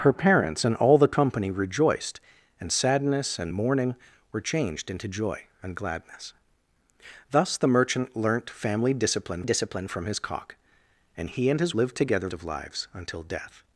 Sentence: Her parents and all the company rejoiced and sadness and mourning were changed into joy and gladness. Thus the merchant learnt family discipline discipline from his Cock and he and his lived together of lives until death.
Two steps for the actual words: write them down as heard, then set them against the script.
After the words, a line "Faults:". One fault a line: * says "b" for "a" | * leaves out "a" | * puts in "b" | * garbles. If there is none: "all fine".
Her parents and all the company rejoiced and sadness and mourning were changed into joy and gladness. Thus the merchant learnt family discipline discipline from his Cock and he and his lived together of lives until death.
Faults:
all fine